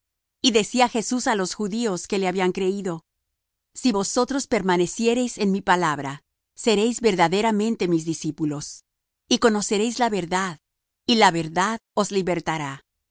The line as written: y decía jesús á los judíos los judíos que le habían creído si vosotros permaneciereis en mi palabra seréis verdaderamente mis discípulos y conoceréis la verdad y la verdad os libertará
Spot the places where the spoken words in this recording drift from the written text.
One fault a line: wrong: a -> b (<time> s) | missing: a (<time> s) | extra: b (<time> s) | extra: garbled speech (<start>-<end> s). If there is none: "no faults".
missing: los judíos (2.1 s)